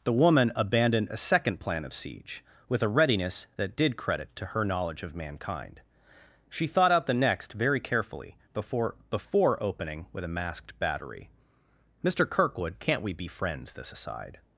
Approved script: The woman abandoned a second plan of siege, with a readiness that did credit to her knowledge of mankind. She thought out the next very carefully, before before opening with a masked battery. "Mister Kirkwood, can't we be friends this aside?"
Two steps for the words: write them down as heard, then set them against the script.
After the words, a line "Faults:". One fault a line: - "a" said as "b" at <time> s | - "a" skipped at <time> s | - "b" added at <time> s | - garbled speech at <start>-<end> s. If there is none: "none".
The woman abandoned a second plan of siege, with a readiness that did credit to her knowledge of mankind. She thought out the next very carefully, before before opening with a masked battery. "Mister Kirkwood, can't we be friends this aside?"
Faults:
none